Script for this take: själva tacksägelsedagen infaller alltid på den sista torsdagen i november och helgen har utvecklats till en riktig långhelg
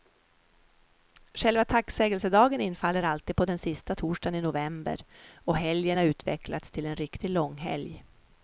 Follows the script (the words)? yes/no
yes